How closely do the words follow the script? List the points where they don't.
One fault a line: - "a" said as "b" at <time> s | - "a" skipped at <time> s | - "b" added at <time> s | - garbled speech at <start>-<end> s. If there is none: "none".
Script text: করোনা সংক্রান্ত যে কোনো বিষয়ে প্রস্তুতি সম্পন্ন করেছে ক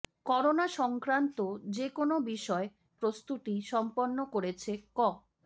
none